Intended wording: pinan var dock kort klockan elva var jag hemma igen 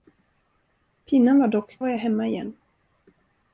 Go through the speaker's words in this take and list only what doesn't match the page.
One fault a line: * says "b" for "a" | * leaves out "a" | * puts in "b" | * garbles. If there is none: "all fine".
* leaves out "kort klockan elva"